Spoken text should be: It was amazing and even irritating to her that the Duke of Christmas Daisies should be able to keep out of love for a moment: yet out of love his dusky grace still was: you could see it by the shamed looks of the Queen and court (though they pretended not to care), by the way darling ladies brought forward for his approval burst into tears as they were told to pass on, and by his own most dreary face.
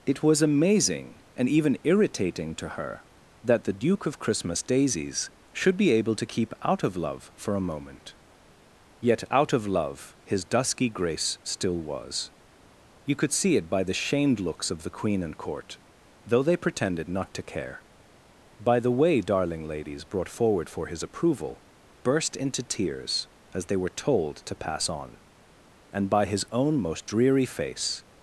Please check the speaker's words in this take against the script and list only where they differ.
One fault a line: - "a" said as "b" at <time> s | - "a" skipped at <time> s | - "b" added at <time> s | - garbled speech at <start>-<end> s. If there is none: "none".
none